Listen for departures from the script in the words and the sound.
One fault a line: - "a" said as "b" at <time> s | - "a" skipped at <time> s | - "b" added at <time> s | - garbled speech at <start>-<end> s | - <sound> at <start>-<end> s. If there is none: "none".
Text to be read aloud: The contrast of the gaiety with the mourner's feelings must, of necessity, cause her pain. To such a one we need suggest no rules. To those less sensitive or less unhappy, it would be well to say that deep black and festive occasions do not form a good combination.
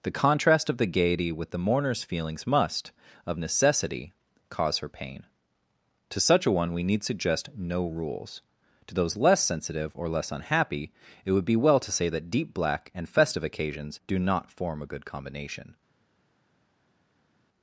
none